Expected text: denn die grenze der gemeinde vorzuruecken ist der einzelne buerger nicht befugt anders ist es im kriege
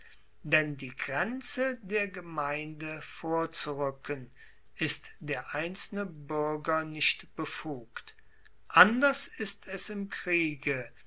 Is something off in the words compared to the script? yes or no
no